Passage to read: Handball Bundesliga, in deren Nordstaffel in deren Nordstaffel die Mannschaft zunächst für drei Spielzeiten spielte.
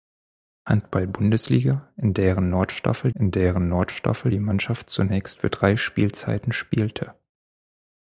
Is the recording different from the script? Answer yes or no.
no